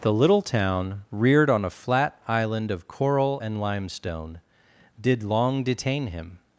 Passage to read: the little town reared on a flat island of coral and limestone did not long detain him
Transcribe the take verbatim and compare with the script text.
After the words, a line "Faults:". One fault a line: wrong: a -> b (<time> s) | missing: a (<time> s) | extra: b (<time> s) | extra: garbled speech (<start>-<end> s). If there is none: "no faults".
the little town reared on a flat island of coral and limestone did long detain him
Faults:
missing: not (5.2 s)